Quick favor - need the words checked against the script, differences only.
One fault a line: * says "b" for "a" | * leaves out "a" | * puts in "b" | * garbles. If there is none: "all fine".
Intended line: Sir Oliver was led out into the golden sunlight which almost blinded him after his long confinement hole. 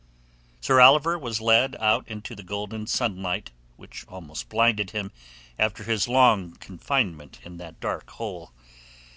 * puts in "in that dark"